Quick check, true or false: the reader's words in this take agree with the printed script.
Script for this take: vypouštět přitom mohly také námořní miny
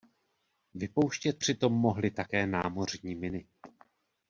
true